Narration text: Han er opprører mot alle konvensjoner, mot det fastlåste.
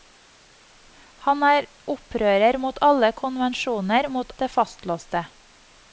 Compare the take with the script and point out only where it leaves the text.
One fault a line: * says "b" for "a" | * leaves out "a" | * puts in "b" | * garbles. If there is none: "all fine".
all fine